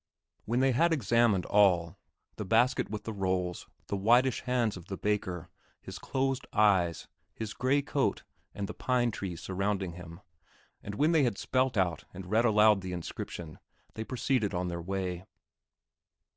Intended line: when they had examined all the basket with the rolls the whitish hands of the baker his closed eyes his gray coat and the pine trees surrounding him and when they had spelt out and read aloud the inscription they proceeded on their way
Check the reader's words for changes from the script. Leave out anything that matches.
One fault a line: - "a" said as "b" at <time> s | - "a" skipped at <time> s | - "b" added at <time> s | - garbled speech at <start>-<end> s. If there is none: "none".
none